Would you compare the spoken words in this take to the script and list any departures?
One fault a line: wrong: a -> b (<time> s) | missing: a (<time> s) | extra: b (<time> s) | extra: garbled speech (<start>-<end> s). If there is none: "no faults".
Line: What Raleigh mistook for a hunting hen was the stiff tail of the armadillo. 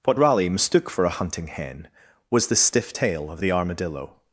no faults